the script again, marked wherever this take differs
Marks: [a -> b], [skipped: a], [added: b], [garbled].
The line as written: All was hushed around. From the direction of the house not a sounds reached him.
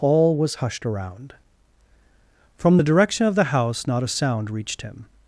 All was hushed around. From the direction of the house not a [sounds -> sound] reached him.